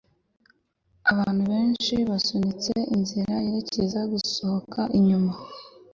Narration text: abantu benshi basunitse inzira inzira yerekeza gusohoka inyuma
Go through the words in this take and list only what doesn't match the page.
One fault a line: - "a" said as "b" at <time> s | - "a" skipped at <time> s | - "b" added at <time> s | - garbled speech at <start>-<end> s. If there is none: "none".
- "inzira" skipped at 3.3 s